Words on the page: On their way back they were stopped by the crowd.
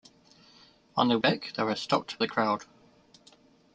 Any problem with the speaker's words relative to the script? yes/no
yes